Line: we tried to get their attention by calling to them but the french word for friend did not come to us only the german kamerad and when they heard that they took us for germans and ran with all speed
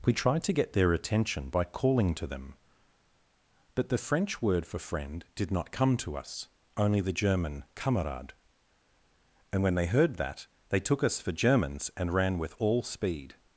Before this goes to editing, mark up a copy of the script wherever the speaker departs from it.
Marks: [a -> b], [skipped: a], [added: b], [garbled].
we tried to get their attention by calling to them but the french word for friend did not come to us only the german kamerad and when they heard that they took us for germans and ran with all speed